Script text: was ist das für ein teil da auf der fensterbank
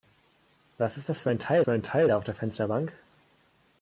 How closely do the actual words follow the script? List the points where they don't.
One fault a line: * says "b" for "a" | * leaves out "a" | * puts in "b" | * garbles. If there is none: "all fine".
* puts in "für ein teil"